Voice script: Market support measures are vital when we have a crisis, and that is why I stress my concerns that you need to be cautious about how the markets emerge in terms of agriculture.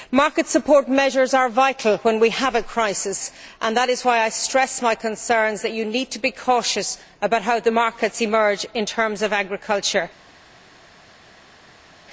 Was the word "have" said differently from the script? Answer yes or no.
no